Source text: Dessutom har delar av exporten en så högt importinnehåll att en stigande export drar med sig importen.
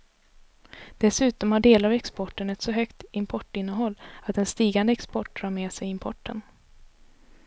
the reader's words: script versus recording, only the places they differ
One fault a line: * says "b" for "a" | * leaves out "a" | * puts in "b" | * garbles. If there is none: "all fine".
* says "ett" for "en"